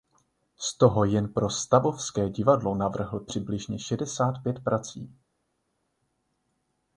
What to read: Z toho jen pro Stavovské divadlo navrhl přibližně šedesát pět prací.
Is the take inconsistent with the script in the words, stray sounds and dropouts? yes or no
no